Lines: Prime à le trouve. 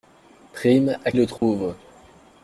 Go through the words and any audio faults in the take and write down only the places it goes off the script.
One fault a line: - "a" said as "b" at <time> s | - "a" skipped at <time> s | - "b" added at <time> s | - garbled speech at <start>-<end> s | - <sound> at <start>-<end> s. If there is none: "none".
- dropout at 1.4-1.4 s